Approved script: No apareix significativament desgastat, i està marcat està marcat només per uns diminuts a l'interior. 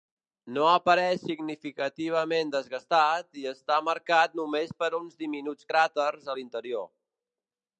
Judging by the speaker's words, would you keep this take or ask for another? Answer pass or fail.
fail